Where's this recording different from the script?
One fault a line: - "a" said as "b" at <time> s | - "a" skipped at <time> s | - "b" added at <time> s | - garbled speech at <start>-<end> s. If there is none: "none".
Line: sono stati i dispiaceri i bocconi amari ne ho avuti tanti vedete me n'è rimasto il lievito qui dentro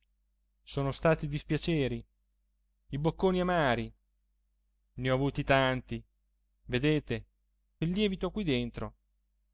- "me n'è rimasto" skipped at 7.2 s